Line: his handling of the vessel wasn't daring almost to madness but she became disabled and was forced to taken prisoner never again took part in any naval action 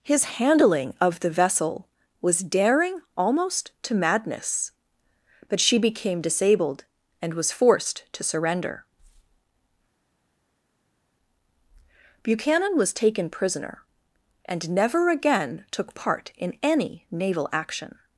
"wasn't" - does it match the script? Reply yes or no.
no